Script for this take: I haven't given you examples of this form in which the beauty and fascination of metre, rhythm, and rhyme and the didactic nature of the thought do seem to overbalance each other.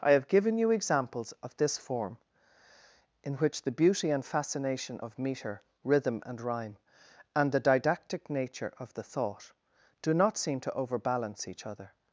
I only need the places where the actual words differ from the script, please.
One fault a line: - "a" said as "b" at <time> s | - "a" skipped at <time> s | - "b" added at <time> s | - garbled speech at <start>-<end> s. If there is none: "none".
- "haven't" said as "have" at 0.1 s
- "not" added at 10.1 s